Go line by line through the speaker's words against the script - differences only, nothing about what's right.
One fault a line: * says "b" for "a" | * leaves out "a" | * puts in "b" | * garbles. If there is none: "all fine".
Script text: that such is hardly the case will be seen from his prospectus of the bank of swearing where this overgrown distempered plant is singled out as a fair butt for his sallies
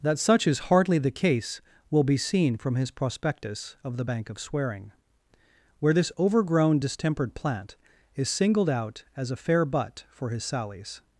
all fine